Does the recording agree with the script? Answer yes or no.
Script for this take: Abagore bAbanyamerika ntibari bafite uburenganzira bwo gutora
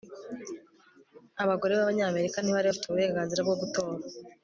yes